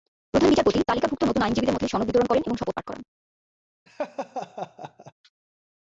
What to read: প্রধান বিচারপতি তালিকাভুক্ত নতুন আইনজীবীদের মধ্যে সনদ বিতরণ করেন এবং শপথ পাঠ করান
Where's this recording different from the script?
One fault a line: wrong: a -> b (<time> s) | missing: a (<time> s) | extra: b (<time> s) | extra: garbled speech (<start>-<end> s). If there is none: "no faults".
no faults